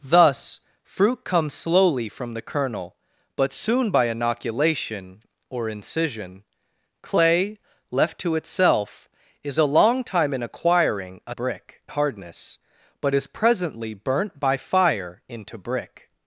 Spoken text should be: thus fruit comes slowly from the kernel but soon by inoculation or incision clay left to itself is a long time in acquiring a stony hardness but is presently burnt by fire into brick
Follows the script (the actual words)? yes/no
no